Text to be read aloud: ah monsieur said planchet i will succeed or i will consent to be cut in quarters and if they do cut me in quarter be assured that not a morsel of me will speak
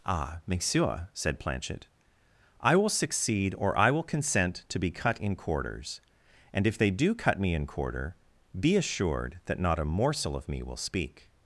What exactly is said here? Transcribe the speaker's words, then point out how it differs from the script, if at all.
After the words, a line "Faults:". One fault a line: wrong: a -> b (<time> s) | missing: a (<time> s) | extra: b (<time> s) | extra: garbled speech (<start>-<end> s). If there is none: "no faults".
ah monsieur said planchet i will succeed or i will consent to be cut in quarters and if they do cut me in quarter be assured that not a morsel of me will speak
Faults:
no faults